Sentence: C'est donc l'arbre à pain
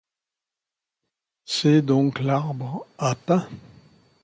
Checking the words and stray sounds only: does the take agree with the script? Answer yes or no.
yes